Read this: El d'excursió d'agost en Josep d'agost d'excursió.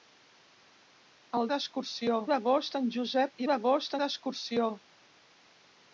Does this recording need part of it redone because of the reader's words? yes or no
no